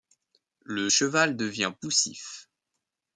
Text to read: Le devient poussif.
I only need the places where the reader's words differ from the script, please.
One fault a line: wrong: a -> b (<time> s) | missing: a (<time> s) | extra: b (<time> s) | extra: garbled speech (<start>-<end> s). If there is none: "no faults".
extra: cheval (0.9 s)